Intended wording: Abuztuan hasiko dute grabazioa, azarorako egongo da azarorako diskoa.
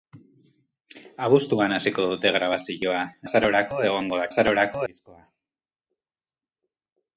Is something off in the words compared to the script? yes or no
no